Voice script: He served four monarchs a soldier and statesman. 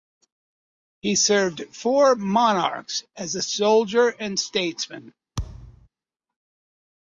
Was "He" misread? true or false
false